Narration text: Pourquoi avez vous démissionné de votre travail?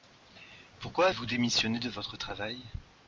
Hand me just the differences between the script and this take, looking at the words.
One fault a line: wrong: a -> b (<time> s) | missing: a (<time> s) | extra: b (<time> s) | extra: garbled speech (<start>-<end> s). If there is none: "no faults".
missing: avez (1.1 s)